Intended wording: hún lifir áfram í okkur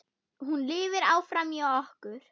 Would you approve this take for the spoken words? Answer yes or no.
yes